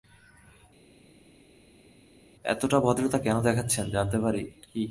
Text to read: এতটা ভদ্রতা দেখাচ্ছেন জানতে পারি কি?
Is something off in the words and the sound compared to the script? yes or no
yes